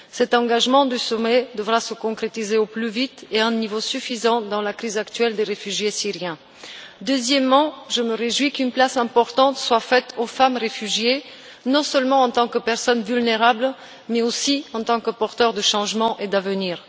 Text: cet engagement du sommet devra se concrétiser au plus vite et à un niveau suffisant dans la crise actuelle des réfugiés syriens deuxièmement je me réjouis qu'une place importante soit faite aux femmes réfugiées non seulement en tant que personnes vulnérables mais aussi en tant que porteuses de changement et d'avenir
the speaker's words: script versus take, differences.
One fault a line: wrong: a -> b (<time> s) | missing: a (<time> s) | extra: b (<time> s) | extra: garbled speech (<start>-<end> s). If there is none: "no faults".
no faults